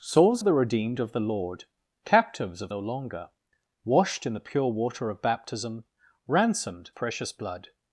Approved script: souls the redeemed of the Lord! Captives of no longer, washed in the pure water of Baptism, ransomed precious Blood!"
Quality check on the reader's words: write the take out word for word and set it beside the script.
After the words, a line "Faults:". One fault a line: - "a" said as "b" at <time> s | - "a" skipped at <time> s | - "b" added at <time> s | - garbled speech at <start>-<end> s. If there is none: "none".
souls the redeemed of the Lord! Captives of no longer, washed in the pure water of Baptism, ransomed precious Blood!"
Faults:
none